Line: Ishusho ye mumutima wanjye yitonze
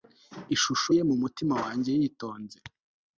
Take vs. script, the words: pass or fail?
pass